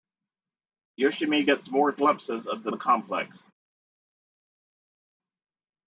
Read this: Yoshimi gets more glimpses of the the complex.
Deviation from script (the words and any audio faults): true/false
false